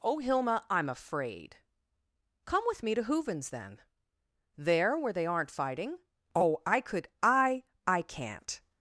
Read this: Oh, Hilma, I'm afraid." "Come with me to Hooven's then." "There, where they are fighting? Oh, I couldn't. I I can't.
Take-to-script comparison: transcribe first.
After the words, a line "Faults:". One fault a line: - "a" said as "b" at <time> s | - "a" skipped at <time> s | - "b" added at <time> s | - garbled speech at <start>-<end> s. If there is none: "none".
Oh, Hilma, I'm afraid." "Come with me to Hooven's then." "There, where they aren't fighting? Oh, I could. I I can't.
Faults:
- "are" said as "aren't" at 5.3 s
- "couldn't" said as "could" at 6.8 s